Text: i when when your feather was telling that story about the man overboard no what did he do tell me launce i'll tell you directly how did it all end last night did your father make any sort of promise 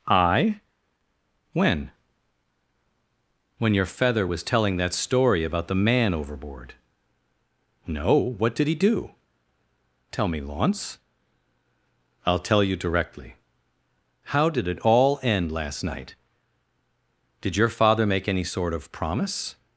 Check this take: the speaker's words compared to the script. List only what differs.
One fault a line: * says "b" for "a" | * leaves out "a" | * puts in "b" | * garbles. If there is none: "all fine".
all fine